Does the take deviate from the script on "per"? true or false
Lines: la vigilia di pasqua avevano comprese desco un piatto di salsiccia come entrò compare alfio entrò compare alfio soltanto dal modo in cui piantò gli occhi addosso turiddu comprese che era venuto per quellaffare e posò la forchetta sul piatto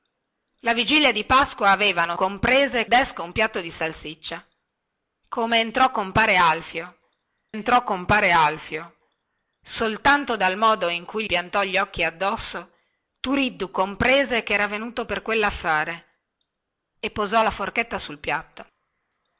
false